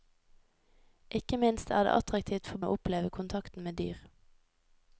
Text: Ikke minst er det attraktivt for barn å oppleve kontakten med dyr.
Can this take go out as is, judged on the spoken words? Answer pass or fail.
fail